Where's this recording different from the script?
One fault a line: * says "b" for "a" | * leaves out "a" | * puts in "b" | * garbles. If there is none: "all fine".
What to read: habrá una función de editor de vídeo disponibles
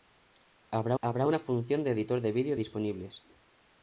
* puts in "habrá"